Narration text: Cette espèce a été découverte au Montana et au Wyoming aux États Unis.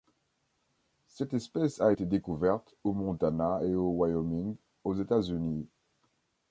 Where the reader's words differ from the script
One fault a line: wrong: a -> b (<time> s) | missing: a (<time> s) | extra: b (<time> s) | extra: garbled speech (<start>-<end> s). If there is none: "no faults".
no faults